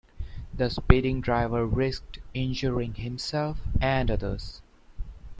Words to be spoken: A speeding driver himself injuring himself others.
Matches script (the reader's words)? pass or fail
fail